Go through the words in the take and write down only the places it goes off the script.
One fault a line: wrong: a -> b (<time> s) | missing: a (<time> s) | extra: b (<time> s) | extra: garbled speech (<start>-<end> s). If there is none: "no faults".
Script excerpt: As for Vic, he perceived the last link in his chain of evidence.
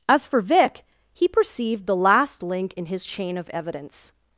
no faults